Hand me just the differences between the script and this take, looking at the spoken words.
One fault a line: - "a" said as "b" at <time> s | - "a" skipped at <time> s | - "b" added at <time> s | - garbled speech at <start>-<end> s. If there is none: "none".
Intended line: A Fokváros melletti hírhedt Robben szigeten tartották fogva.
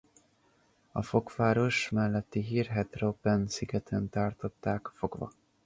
none